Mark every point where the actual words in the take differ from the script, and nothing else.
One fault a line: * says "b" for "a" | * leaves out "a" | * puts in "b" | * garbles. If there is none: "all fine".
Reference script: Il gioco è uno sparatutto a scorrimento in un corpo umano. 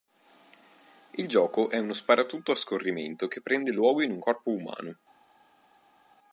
* puts in "che prende luogo"